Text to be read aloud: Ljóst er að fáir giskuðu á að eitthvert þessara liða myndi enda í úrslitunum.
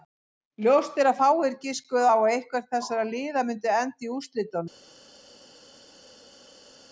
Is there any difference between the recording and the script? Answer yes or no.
no